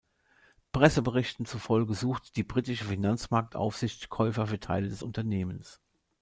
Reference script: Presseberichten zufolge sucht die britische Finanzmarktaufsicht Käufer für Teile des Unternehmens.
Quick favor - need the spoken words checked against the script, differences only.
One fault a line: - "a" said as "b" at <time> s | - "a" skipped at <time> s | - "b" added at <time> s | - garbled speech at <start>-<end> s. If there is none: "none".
none